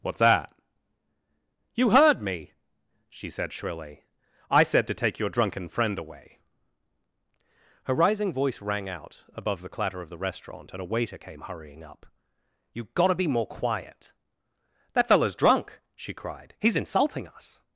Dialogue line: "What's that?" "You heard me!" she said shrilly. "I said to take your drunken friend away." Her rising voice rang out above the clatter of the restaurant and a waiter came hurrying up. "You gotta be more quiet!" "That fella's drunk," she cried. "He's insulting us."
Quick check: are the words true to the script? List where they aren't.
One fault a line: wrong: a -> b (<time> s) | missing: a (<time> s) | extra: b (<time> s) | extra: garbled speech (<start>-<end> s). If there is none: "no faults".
no faults